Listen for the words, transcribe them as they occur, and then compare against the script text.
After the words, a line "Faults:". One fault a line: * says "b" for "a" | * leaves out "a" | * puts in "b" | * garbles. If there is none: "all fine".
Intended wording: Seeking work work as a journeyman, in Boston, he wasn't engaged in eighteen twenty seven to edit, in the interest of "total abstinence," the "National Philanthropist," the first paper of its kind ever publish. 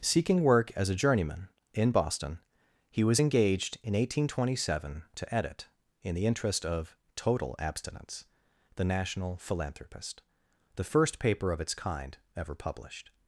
Seeking work as a journeyman, in Boston, he was engaged in eighteen twenty seven to edit, in the interest of "total abstinence," the "National Philanthropist," the first paper of its kind ever published.
Faults:
* leaves out "work"
* says "was" for "wasn't"
* says "published" for "publish"